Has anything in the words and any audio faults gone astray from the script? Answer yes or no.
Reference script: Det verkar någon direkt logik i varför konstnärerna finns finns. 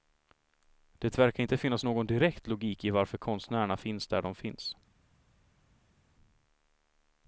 yes